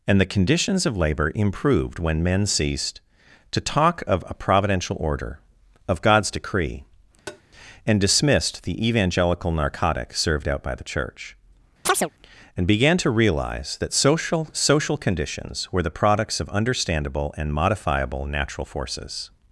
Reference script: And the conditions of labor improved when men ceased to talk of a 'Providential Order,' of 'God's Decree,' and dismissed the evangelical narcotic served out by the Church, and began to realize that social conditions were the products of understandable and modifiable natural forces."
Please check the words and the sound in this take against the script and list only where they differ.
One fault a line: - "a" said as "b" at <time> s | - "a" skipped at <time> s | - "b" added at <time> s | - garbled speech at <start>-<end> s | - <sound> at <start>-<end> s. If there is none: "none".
- tap at 7.3-7.4 s
- chirp at 11.9-12.1 s
- "social" added at 14.5 s